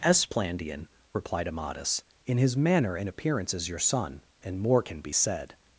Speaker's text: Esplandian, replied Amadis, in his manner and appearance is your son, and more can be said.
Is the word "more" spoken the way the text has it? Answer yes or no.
yes